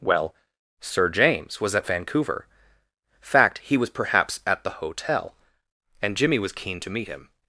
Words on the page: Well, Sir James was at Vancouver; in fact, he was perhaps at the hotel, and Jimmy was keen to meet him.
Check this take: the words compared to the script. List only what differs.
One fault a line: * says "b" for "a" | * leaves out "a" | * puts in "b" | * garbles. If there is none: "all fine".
* leaves out "in"